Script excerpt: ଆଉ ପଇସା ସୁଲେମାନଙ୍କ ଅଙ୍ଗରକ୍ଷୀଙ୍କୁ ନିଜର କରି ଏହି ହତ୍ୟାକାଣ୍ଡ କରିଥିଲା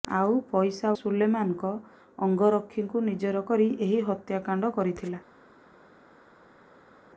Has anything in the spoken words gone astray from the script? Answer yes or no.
no